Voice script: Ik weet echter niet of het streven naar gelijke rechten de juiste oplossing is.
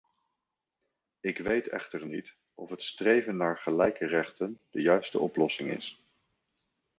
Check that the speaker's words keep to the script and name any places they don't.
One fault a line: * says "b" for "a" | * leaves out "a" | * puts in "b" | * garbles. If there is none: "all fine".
all fine